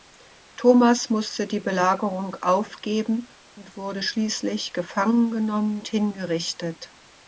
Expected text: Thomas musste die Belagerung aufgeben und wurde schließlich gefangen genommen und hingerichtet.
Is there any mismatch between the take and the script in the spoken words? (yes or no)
yes